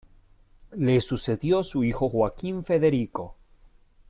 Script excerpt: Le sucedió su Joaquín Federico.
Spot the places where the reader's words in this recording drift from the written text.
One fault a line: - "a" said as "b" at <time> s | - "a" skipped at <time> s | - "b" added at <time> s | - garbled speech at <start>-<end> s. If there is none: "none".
- "hijo" added at 1.8 s